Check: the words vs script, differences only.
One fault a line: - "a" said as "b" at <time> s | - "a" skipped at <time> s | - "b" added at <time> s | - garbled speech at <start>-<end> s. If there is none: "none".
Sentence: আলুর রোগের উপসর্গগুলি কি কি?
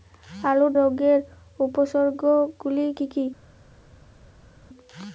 none